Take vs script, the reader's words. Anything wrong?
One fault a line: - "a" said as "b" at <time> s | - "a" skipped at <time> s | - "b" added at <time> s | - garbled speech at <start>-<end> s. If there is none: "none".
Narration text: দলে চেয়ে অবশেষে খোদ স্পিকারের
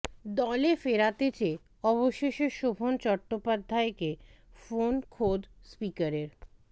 - "ফেরাতে" added at 0.8 s
- "শোভন চট্টোপাধ্যায়কে ফোন" added at 2.5 s